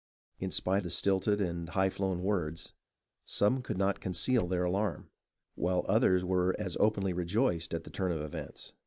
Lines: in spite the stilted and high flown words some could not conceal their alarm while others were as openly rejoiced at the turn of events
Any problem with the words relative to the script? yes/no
no